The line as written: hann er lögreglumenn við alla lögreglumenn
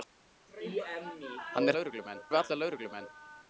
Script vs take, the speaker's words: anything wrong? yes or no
no